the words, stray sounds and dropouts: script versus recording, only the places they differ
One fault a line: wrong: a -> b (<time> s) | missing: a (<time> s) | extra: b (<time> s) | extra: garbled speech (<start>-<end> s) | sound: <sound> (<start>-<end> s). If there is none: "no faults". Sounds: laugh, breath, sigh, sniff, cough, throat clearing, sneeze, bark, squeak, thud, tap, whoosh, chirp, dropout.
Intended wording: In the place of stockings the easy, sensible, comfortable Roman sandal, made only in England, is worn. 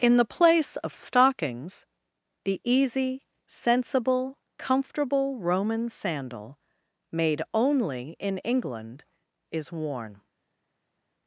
no faults